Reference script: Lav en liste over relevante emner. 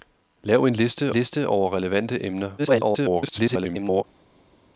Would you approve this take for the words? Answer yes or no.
no